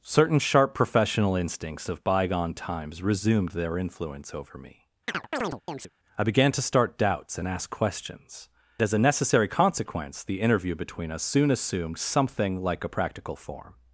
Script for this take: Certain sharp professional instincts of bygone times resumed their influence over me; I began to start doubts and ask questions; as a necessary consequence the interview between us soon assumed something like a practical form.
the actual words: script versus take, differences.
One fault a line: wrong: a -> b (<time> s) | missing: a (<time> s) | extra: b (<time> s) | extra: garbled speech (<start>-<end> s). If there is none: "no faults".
no faults